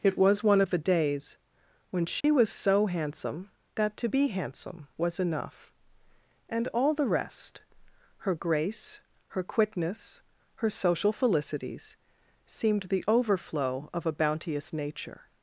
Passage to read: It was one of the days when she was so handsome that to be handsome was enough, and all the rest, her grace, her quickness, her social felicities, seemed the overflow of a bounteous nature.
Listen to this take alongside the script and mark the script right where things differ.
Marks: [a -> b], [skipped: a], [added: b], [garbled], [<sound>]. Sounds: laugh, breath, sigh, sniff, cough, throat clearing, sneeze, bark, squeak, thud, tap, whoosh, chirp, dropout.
It was one of the days when she [dropout] was so handsome that to be handsome was enough, and all the rest, her grace, her quickness, her social felicities, seemed the overflow of a bounteous nature.